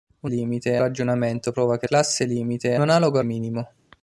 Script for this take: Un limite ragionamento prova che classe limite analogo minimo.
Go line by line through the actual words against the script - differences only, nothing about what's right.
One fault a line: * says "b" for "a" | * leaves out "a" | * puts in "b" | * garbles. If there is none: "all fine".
all fine